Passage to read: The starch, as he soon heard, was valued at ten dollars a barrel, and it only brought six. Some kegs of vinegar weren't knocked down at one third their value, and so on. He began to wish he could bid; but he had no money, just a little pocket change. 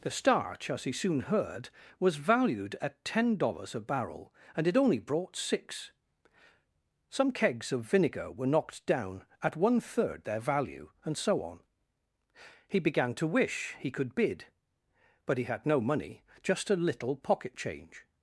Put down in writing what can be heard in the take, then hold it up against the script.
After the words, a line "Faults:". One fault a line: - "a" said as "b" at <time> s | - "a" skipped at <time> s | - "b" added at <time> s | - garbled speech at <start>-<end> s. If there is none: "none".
The starch, as he soon heard, was valued at ten dollars a barrel, and it only brought six. Some kegs of vinegar were knocked down at one third their value, and so on. He began to wish he could bid; but he had no money, just a little pocket change.
Faults:
- "weren't" said as "were" at 8.3 s